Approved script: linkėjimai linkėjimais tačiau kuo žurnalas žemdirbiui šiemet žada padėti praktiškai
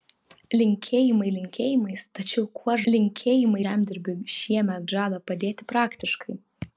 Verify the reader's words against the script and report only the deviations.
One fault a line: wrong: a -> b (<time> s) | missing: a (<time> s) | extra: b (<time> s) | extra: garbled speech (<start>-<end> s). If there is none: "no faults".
wrong: žurnalas -> linkėjimai (2.9 s)